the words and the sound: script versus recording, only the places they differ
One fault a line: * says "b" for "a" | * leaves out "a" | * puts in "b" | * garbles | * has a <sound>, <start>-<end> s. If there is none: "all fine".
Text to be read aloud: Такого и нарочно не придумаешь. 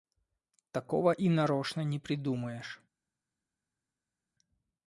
all fine